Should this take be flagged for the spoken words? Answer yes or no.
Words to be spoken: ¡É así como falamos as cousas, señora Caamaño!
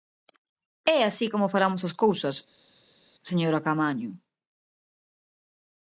no